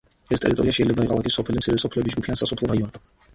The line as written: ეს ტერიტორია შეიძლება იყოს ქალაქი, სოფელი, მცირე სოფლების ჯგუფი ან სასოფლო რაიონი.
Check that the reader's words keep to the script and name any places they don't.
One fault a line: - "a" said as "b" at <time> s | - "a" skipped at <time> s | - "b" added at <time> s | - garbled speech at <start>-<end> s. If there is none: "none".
- "იყოს" skipped at 1.1 s